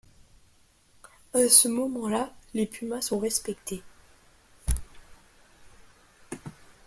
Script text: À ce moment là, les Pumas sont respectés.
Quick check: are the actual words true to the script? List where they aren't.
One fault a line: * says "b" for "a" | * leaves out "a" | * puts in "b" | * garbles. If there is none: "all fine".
all fine